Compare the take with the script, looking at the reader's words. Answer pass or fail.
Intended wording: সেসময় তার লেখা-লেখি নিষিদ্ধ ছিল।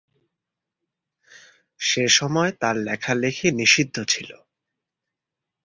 pass